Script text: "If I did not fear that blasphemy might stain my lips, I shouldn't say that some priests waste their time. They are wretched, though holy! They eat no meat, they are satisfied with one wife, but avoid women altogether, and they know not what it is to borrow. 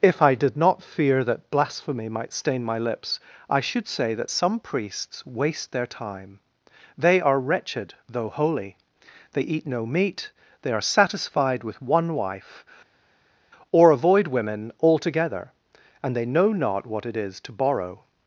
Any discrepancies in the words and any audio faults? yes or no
yes